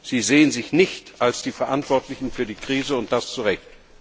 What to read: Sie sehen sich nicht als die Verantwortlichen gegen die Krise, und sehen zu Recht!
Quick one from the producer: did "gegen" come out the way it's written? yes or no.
no